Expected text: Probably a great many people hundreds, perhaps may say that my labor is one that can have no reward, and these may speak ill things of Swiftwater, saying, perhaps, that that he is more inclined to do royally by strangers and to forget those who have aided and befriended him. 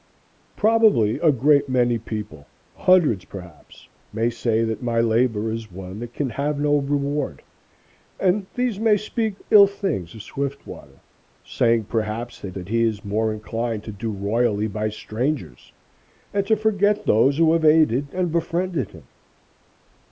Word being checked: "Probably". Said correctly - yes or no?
yes